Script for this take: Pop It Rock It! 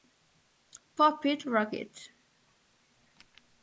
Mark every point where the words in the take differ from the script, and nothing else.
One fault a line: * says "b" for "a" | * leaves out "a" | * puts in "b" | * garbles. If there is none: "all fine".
all fine